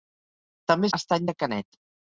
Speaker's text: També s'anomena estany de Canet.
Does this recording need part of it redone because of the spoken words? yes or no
yes